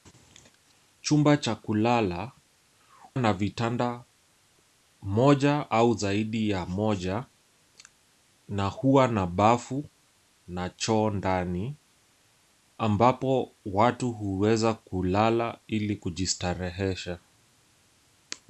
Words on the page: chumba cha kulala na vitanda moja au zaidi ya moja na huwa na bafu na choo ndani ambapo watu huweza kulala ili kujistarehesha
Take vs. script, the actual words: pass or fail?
pass